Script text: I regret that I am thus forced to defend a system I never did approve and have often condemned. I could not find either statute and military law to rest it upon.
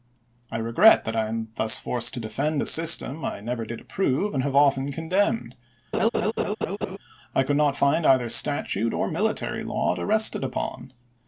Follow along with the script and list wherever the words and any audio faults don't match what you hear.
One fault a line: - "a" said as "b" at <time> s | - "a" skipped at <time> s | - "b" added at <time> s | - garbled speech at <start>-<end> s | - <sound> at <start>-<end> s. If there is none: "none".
- laugh at 5.9-7.0 s
- "and" said as "or" at 8.9 s